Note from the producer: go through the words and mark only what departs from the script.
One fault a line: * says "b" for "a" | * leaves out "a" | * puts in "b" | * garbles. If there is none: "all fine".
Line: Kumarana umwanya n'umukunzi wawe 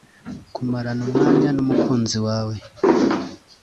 all fine